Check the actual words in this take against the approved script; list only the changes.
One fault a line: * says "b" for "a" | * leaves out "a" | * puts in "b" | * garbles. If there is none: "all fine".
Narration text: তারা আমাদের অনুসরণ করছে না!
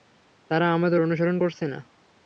all fine